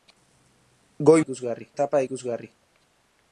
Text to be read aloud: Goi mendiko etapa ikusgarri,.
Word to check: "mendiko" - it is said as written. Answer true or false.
false